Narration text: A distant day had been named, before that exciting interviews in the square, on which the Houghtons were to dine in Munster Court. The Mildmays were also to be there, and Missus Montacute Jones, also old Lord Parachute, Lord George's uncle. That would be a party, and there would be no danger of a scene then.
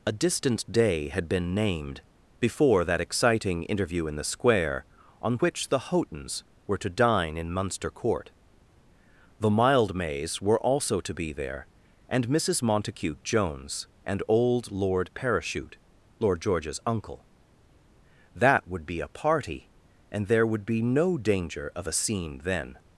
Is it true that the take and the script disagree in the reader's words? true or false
true